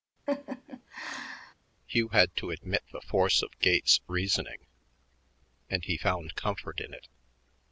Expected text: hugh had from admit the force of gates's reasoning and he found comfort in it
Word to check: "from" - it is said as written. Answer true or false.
false